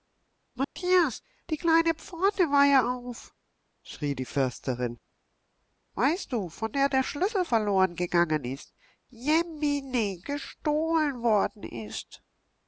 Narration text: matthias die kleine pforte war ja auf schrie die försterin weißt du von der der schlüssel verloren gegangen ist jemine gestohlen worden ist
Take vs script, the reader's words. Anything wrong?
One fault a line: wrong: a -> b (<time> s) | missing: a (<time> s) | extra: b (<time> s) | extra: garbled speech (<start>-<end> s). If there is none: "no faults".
no faults